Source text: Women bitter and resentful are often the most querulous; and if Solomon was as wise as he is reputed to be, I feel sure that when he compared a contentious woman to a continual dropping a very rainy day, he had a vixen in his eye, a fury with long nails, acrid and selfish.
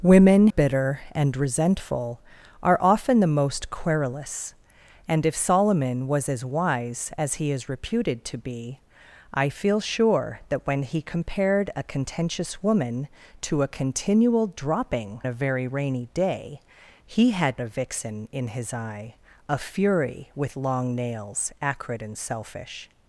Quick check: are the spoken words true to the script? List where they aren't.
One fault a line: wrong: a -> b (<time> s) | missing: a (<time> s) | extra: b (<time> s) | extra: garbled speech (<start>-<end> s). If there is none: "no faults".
no faults